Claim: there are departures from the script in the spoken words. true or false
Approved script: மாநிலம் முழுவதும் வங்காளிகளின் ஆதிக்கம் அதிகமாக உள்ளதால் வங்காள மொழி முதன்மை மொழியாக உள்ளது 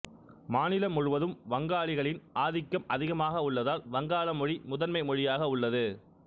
false